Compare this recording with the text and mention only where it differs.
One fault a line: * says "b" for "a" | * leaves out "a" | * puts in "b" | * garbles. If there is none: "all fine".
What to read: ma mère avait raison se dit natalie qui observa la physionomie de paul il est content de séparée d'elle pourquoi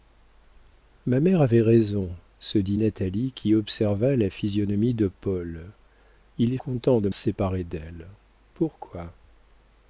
all fine